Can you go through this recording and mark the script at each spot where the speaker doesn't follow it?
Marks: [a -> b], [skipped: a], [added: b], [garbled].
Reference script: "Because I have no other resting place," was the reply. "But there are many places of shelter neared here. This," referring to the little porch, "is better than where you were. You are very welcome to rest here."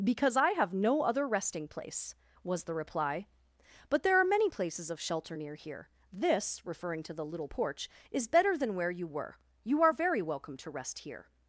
"Because I have no other resting place," was the reply. "But there are many places of shelter [neared -> near] here. This," referring to the little porch, "is better than where you were. You are very welcome to rest here."